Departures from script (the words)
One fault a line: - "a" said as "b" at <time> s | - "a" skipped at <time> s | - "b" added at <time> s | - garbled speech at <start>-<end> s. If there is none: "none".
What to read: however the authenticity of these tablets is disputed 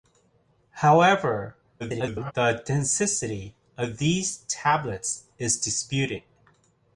- garbled speech at 1.8-2.3 s